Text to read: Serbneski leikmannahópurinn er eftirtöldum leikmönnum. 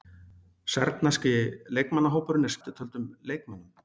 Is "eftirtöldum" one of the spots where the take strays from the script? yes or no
no